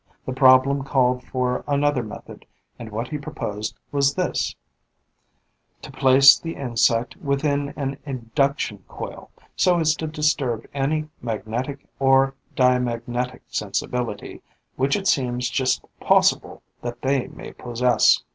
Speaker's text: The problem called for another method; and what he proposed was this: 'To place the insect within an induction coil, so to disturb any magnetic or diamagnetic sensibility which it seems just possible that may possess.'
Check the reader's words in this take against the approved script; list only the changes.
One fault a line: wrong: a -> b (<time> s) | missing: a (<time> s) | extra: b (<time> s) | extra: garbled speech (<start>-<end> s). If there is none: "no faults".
extra: as (9.8 s)
extra: they (17.0 s)